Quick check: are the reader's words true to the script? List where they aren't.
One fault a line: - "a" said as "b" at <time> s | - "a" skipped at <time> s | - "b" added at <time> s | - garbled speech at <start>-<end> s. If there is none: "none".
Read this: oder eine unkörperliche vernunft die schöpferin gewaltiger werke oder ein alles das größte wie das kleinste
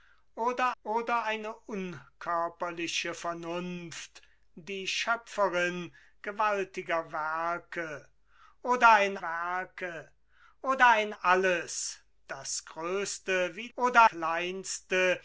- "oder" added at 0.8 s
- "werke oder ein" added at 9.2 s
- "das" said as "oder" at 13.7 s